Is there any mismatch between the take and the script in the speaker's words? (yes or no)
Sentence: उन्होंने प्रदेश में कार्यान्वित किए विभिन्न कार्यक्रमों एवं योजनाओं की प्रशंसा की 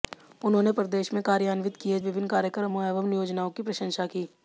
no